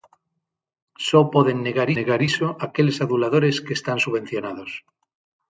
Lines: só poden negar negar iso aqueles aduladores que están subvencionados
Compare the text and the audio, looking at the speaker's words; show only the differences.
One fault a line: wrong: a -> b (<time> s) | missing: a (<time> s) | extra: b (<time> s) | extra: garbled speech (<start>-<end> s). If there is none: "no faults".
no faults